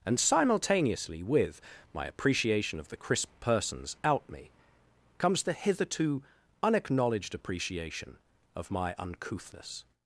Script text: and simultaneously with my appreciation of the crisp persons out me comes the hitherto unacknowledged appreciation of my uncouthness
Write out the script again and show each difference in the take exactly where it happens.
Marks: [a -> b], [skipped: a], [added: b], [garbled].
and simultaneously with my appreciation of the crisp persons out me comes the hitherto unacknowledged appreciation of my uncouthness